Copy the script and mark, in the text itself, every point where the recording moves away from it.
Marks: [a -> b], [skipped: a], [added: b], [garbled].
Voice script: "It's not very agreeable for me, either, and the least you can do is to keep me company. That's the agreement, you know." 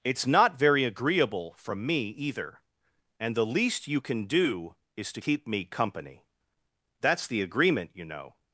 "It's not very agreeable [for -> from] me, either, and the least you can do is to keep me company. That's the agreement, you know."